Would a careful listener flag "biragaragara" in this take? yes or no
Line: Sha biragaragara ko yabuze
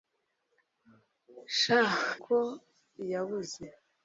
yes